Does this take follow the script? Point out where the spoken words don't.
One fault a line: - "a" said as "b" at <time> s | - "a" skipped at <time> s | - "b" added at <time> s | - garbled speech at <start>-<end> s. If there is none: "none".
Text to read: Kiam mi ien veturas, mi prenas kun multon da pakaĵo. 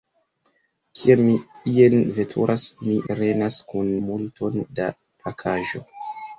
none